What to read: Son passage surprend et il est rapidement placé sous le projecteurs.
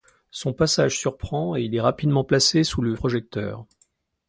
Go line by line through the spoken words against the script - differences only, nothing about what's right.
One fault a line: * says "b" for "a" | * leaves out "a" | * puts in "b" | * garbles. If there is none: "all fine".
all fine